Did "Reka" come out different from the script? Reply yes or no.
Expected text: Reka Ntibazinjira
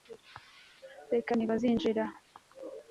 no